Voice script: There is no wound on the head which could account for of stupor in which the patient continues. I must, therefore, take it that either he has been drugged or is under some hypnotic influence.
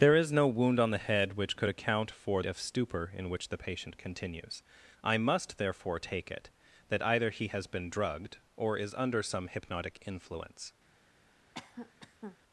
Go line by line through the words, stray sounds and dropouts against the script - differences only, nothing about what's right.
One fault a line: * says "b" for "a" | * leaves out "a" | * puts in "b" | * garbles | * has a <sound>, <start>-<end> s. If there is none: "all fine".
* has a cough, 11.5-12.4 s